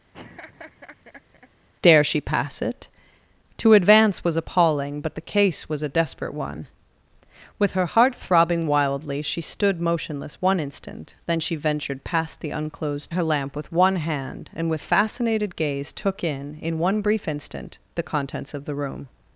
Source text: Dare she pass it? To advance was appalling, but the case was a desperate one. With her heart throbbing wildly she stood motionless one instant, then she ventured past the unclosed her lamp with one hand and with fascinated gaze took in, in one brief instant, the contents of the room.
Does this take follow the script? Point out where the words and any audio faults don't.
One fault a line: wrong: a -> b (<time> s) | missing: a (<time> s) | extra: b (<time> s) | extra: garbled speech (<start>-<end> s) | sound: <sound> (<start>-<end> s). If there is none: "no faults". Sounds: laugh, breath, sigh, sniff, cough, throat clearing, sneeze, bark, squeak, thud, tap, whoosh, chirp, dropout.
sound: laugh (0.1-1.5 s)